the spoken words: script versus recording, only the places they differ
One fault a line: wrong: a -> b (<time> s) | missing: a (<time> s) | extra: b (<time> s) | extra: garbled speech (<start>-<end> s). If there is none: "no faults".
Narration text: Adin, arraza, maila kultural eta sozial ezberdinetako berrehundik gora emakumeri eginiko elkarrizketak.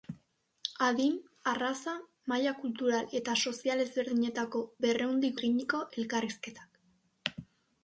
missing: gora emakumeri (5.4 s)